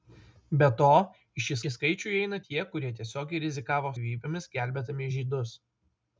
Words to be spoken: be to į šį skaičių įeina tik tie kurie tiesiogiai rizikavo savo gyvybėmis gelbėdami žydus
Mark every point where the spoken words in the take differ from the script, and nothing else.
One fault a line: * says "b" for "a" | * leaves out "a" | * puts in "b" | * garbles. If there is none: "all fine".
* puts in "šį"
* leaves out "tik"
* leaves out "savo"